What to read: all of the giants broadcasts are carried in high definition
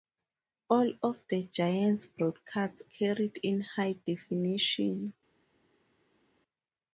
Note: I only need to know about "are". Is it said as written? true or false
false